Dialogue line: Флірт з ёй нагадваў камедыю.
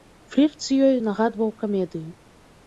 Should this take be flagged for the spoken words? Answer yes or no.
no